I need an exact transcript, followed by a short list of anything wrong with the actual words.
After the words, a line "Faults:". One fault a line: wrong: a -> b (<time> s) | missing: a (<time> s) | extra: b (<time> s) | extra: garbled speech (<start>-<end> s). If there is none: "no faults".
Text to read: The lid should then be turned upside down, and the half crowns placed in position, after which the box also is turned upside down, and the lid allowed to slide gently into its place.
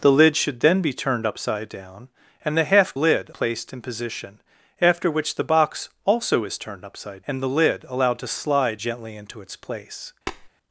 The lid should then be turned upside down, and the half lid placed in position, after which the box also is turned upside and the lid allowed to slide gently into its place.
Faults:
wrong: crowns -> lid (2.9 s)
missing: down (7.2 s)